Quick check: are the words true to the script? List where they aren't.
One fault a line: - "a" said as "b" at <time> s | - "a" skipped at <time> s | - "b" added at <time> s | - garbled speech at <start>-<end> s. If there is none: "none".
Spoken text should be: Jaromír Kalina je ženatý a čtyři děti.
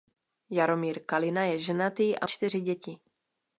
none